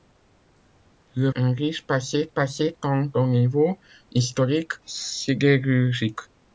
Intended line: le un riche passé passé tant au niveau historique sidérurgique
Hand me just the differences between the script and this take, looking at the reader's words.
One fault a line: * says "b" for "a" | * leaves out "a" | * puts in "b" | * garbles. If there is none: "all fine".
all fine